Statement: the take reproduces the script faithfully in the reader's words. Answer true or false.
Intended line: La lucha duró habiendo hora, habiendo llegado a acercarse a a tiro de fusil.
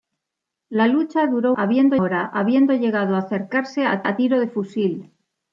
true